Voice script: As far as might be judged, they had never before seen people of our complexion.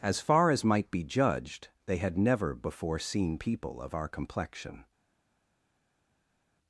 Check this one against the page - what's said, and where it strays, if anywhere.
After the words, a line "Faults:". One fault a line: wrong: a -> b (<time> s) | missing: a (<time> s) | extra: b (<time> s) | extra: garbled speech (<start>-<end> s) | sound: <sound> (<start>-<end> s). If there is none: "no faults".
As far as might be judged, they had never before seen people of our complexion.
Faults:
no faults